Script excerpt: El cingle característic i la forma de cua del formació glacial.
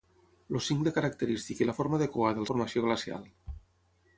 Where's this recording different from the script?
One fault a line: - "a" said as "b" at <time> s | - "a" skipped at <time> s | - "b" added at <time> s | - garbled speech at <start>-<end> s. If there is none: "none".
none